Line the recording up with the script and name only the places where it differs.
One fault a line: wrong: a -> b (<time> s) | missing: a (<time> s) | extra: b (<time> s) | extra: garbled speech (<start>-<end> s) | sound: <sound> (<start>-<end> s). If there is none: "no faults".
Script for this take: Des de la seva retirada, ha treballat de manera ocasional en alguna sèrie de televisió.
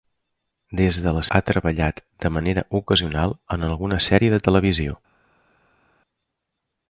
missing: seva retirada (1.2 s)